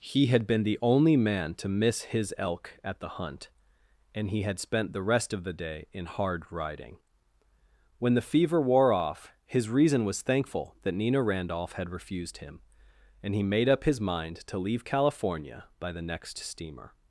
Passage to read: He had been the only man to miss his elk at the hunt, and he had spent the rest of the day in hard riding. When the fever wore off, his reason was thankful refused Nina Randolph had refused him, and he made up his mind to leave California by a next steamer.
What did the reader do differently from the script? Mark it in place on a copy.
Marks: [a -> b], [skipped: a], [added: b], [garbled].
He had been the only man to miss his elk at the hunt, and he had spent the rest of the day in hard riding. When the fever wore off, his reason was thankful [refused -> that] Nina Randolph had refused him, and he made up his mind to leave California by [a -> the] next steamer.